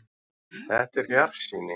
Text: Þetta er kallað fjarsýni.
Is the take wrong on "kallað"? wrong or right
wrong